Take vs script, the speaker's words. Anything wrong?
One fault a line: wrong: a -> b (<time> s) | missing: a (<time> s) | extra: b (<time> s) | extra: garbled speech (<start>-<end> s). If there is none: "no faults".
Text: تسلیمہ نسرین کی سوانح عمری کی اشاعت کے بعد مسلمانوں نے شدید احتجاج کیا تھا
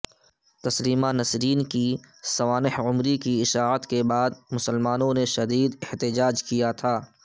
no faults